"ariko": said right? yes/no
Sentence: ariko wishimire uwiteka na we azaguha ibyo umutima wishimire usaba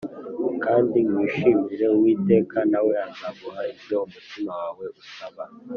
no